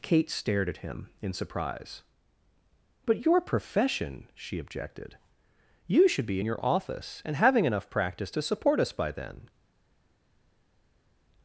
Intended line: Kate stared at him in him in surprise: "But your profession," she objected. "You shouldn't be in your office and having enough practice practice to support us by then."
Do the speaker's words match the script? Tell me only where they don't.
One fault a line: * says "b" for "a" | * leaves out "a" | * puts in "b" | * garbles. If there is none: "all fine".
* leaves out "him in"
* says "should" for "shouldn't"
* leaves out "practice"